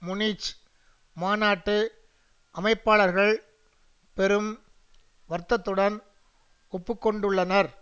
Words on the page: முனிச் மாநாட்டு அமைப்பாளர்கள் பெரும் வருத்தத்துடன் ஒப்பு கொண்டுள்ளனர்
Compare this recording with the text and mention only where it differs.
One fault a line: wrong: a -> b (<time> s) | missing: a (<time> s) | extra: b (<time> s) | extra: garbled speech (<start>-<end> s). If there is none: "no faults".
no faults